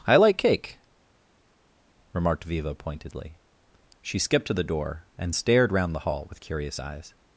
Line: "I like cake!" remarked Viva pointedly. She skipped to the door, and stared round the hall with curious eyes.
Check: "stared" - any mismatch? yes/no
no